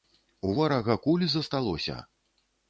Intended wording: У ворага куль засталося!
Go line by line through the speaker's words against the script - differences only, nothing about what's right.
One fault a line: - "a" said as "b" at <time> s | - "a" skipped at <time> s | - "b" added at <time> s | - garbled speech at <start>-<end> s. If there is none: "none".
none